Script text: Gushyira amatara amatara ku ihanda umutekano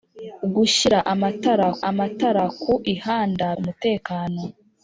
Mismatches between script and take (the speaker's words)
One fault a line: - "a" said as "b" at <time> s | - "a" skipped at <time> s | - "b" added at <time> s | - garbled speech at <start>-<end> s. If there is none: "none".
none